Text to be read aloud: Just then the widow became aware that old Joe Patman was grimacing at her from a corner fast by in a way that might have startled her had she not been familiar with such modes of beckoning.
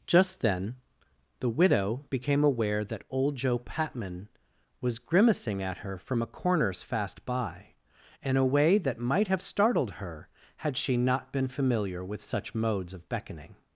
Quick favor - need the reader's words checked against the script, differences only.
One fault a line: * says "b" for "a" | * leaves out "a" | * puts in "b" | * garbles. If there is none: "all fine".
* says "corners" for "corner"